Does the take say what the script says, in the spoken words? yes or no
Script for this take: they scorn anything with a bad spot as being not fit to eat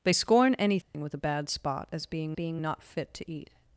no